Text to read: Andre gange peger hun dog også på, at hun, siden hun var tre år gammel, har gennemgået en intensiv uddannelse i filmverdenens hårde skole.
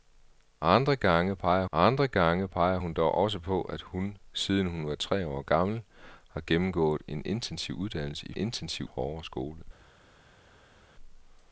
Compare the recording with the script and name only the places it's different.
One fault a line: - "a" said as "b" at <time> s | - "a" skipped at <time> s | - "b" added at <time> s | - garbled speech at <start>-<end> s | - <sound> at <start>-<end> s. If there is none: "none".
- "andre gange peger" added at 1.7 s
- "filmverdenens" said as "intensiv" at 8.4 s